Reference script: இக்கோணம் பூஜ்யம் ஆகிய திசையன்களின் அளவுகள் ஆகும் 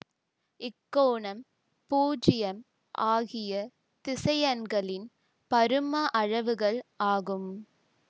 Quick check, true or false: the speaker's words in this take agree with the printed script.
false